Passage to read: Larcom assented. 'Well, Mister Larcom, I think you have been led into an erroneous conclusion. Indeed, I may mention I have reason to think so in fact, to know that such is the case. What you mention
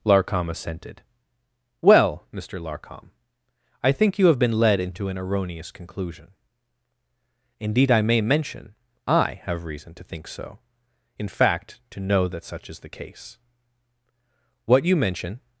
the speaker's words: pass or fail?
pass